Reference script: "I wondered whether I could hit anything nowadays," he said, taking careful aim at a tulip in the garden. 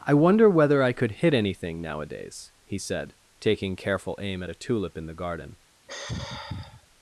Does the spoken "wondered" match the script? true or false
false